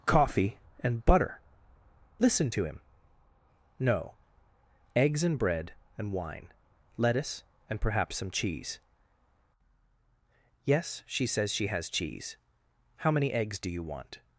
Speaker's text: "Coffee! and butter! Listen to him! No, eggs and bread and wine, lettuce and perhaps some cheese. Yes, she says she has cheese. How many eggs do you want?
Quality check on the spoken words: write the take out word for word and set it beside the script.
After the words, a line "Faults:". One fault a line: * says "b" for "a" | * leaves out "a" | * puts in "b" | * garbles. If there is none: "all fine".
"Coffee! and butter! Listen to him! No, eggs and bread and wine, lettuce and perhaps some cheese. Yes, she says she has cheese. How many eggs do you want?
Faults:
all fine